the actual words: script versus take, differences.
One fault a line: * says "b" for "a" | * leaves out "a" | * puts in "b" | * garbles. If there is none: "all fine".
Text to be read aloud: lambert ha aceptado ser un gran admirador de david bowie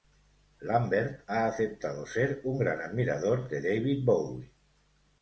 all fine